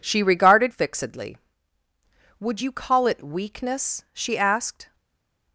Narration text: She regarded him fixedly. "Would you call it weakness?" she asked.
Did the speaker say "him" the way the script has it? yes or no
no